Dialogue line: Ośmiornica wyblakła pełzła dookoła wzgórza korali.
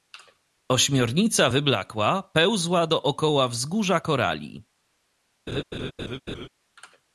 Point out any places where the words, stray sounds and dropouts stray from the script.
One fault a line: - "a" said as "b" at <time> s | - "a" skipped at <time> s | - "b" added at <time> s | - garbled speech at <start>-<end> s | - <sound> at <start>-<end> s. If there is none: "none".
- laugh at 5.5-6.5 s